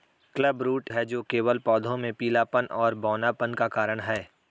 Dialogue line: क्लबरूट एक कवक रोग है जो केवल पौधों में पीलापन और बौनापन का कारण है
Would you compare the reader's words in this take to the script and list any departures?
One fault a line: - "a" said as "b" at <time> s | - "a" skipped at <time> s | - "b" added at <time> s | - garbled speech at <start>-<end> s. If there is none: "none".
- "एक कवक रोग" skipped at 0.9 s